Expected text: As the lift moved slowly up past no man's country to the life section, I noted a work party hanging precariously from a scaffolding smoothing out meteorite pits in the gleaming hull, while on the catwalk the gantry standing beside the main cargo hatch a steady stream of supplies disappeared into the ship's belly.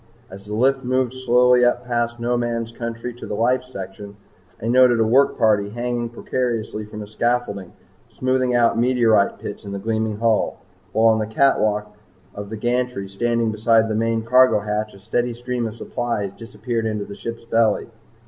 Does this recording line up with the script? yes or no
no